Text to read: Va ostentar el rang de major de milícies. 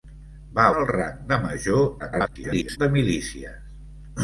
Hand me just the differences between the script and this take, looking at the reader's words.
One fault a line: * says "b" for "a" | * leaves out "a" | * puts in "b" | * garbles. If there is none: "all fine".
* leaves out "ostentar"
* garbles